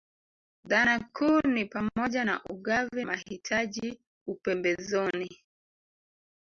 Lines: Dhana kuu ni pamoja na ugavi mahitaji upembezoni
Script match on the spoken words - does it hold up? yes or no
yes